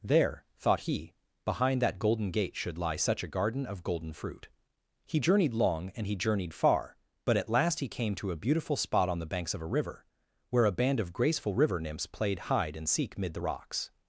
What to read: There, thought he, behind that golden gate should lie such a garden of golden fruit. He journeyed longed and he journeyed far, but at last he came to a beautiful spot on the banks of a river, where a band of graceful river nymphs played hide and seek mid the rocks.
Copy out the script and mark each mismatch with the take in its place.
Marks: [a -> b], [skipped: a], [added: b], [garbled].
There, thought he, behind that golden gate should lie such a garden of golden fruit. He journeyed [longed -> long] and he journeyed far, but at last he came to a beautiful spot on the banks of a river, where a band of graceful river nymphs played hide and seek mid the rocks.